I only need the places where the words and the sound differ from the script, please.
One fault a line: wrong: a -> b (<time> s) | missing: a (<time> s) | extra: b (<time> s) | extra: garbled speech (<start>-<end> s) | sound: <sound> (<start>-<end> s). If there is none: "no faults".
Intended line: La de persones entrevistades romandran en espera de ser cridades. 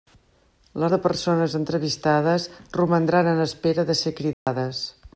sound: dropout (4.3-4.5 s)